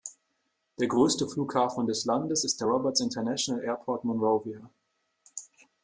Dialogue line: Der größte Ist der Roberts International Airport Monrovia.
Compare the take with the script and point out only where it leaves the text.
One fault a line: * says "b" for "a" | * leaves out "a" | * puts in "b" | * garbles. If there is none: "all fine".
* puts in "Flughafen des Landes"